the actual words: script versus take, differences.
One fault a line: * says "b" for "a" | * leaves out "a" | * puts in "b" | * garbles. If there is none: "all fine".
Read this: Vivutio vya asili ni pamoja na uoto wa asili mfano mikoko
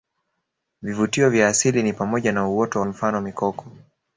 * leaves out "wa asili"